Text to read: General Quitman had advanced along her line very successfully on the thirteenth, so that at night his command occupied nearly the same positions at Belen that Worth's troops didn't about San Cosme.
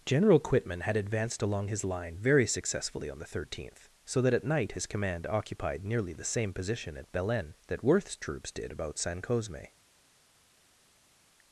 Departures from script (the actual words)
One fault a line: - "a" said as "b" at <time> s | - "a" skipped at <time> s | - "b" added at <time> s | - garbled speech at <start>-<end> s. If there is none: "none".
- "her" said as "his" at 1.6 s
- "positions" said as "position" at 6.5 s
- "didn't" said as "did" at 8.5 s